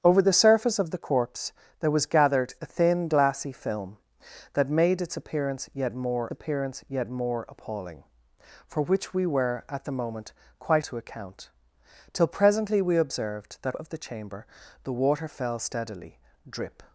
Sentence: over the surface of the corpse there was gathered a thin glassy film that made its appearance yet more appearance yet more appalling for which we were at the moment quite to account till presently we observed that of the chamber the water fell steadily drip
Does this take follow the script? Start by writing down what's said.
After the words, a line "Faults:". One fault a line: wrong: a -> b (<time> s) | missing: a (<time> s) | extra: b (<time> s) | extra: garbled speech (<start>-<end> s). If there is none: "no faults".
over the surface of the corpse there was gathered a thin glassy film that made its appearance yet more appearance yet more appalling for which we were at the moment quite to account till presently we observed that of the chamber the water fell steadily drip
Faults:
no faults